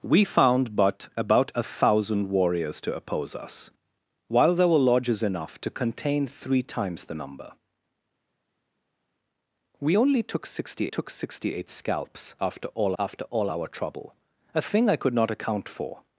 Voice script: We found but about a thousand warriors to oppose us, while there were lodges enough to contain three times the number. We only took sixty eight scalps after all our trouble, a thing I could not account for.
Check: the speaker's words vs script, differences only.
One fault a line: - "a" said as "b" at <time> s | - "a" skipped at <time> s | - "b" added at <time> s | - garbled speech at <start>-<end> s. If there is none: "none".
- "took sixty" added at 10.9 s
- "after all" added at 13.0 s